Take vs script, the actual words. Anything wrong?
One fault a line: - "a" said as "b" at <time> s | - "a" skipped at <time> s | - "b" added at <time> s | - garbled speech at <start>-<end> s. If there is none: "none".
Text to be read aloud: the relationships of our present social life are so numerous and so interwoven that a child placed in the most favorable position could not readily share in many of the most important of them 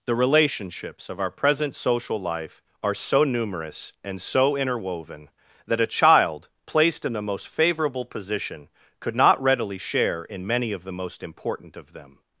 none